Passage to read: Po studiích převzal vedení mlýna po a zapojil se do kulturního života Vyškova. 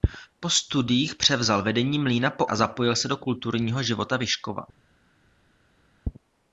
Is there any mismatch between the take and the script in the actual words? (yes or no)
no